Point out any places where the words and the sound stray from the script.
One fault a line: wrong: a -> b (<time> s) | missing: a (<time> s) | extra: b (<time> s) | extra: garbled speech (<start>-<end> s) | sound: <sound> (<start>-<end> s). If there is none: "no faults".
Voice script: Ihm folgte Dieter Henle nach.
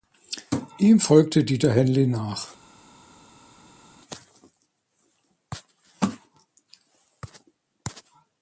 no faults